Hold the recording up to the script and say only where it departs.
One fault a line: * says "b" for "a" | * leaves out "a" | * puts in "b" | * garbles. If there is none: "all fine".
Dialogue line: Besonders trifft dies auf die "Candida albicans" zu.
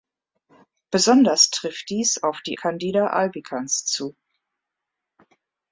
all fine